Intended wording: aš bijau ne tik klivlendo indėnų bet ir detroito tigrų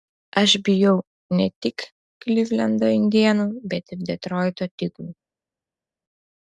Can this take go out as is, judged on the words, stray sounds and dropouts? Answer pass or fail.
pass